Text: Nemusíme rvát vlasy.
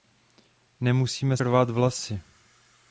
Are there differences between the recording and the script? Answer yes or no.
no